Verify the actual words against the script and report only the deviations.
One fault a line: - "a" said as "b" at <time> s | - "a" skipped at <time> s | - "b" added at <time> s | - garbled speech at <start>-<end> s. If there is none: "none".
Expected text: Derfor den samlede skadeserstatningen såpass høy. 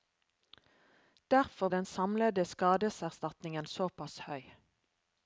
none